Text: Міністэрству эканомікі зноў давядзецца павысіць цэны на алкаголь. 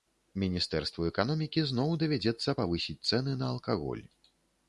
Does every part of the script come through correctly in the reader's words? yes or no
yes